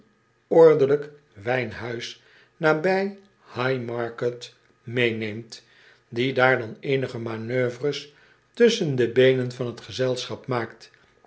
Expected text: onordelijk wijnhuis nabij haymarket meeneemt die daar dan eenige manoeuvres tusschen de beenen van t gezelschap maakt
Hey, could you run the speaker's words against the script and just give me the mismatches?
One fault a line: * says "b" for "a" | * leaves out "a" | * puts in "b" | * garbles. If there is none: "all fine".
all fine